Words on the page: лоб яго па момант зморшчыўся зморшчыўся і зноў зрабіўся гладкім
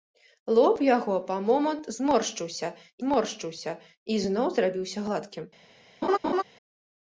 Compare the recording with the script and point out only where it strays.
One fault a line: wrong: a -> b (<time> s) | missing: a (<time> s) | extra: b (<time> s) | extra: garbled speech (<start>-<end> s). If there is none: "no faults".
no faults